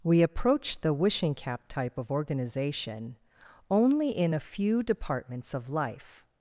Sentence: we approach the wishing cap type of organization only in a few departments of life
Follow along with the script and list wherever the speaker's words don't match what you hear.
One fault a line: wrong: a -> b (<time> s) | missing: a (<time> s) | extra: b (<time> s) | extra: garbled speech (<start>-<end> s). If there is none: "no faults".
no faults